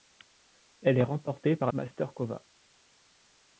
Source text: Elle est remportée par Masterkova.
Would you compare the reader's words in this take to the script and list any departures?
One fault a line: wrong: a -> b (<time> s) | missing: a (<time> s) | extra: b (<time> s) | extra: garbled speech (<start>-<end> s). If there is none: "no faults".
no faults